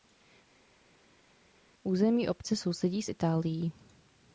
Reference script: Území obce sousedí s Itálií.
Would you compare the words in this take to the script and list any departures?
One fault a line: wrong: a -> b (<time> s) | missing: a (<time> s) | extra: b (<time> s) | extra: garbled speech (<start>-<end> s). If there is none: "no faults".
no faults